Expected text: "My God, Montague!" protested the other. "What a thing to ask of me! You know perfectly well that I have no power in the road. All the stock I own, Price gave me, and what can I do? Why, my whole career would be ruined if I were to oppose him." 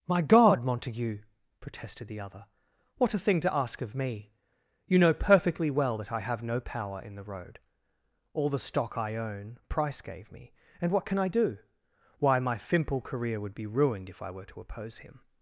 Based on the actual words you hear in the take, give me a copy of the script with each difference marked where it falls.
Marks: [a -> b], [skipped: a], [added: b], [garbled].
"My God, Montague!" protested the other. "What a thing to ask of me! You know perfectly well that I have no power in the road. All the stock I own, Price gave me, and what can I do? Why, my [whole -> fimple] career would be ruined if I were to oppose him."